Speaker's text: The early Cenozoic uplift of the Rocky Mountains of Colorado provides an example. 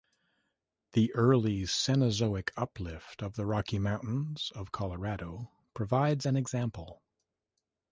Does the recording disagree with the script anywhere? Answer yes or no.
no